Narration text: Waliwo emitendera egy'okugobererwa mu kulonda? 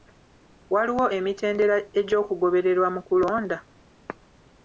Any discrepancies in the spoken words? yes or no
no